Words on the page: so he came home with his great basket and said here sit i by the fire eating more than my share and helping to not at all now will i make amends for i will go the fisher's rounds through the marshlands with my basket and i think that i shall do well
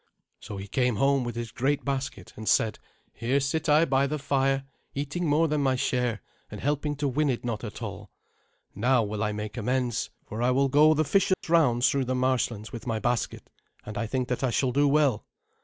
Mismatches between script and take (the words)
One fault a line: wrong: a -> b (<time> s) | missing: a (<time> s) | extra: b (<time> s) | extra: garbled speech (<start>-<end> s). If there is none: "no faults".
extra: win it (7.1 s)